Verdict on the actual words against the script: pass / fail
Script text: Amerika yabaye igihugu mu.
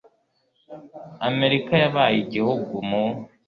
pass